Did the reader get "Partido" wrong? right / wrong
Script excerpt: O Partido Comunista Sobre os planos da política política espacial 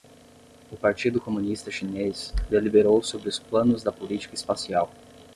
right